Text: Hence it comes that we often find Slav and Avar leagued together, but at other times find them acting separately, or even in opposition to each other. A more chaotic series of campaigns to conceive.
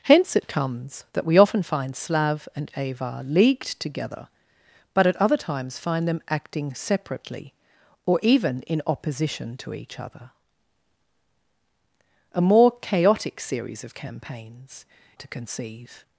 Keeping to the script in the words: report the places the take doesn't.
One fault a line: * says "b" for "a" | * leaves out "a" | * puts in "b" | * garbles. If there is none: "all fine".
all fine